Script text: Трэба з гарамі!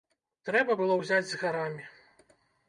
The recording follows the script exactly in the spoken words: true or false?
false